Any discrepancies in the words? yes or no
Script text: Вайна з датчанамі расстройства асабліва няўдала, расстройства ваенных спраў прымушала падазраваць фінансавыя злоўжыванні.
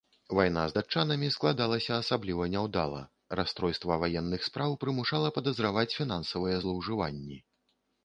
yes